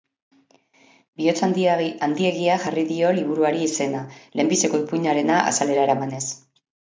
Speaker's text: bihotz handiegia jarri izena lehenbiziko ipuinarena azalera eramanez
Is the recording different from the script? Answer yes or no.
yes